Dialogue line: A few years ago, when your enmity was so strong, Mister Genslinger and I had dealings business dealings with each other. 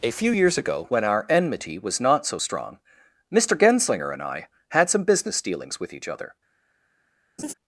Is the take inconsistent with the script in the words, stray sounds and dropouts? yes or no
yes